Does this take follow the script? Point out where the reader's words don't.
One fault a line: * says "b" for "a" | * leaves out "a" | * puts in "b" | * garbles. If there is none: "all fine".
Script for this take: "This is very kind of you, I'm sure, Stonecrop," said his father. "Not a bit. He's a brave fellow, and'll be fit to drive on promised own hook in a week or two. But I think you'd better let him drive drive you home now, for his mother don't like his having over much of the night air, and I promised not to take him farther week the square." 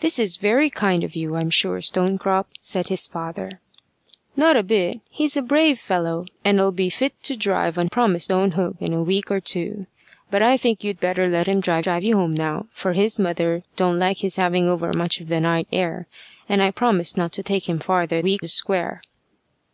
all fine